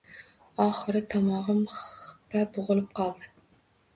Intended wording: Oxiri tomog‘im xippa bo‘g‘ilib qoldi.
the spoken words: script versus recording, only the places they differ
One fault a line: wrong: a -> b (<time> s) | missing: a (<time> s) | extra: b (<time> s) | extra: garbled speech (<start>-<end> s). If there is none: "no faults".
no faults